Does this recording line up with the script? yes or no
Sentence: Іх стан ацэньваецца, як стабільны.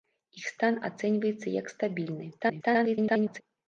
no